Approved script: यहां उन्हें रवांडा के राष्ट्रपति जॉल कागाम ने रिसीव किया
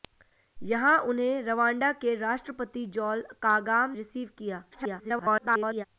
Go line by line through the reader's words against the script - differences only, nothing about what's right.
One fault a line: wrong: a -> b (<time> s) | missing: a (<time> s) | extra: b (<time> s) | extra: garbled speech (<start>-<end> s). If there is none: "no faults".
missing: ने (4.0 s)
extra: garbled speech (4.7-5.9 s)